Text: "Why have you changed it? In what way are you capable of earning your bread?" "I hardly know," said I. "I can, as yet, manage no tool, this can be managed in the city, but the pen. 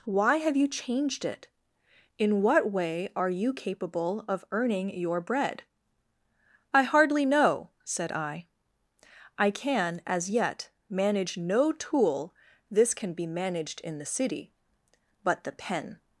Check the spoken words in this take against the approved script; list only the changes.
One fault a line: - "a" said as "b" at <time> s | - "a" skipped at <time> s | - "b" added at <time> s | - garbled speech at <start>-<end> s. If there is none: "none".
none